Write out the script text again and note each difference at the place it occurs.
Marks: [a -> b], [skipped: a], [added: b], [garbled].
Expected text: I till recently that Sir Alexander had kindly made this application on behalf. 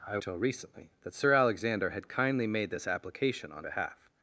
I till recently that Sir Alexander had kindly made this application on behalf.